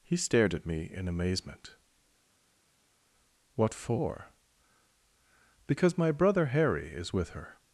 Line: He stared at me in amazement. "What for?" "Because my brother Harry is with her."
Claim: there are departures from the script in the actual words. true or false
false